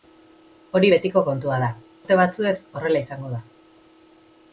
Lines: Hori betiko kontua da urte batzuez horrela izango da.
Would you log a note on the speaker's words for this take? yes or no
no